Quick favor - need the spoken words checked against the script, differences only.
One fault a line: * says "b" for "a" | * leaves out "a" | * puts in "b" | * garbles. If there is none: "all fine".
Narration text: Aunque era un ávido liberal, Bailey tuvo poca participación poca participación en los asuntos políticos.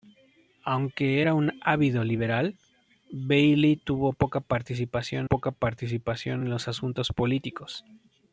all fine